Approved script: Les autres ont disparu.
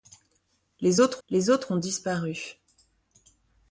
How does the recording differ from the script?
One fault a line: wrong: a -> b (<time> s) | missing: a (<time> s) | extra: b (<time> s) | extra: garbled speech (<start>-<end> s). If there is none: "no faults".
extra: les autres (1.3 s)